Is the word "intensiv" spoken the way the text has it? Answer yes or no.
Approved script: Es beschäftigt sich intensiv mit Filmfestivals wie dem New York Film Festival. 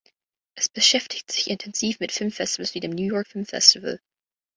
yes